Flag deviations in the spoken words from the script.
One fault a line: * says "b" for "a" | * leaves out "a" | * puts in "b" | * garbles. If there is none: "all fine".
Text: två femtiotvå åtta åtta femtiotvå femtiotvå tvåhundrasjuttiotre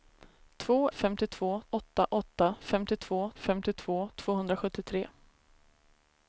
all fine